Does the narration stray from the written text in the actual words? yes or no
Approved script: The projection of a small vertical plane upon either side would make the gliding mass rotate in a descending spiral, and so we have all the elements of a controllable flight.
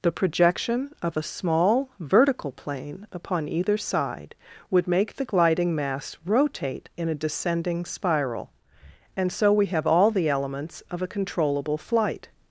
no